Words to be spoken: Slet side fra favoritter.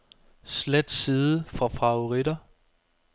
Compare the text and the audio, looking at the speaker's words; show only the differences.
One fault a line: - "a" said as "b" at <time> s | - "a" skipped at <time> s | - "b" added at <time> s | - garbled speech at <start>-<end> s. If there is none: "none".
none